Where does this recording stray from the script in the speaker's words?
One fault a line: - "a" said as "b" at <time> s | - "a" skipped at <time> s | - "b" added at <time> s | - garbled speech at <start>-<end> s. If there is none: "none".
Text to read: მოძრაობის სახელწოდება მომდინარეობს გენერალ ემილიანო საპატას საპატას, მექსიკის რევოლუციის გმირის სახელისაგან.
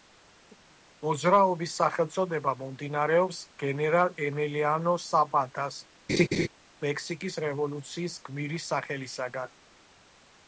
- "საპატას" skipped at 5.8 s